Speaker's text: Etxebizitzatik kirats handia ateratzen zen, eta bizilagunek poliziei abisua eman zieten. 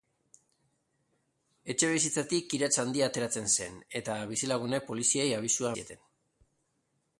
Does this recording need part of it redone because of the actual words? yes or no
yes